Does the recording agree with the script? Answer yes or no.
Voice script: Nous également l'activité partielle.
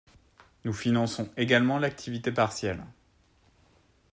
no